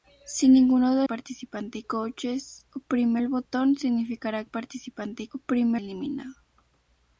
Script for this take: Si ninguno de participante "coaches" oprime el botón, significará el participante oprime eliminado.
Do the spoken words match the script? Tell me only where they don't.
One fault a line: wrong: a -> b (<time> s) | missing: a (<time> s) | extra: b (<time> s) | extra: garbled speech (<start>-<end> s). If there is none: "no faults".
no faults